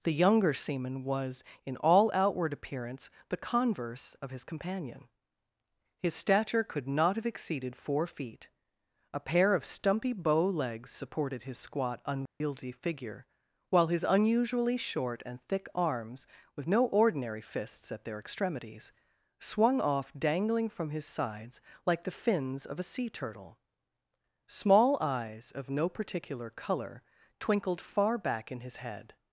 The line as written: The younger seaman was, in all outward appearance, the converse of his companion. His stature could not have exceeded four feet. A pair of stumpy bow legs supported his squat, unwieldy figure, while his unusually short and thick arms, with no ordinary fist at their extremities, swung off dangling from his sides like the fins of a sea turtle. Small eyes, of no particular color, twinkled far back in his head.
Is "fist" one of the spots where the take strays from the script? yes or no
yes